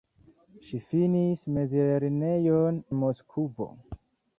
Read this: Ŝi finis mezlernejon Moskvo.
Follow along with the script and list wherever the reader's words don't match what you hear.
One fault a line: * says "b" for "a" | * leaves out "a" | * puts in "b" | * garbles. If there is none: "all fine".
all fine